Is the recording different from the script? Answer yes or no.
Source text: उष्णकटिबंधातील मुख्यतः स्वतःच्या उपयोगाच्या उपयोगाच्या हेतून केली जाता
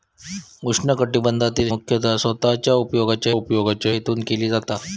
no